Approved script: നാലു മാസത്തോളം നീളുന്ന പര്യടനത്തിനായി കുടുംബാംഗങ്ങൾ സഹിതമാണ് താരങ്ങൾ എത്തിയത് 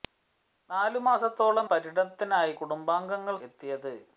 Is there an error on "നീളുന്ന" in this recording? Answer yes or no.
yes